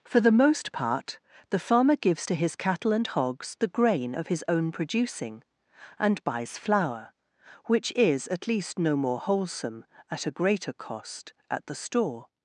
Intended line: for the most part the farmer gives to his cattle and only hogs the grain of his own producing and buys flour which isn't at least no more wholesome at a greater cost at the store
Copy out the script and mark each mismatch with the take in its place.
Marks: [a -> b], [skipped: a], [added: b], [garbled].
for the most part the farmer gives to his cattle and [skipped: only] hogs the grain of his own producing and buys flour which [isn't -> is] at least no more wholesome at a greater cost at the store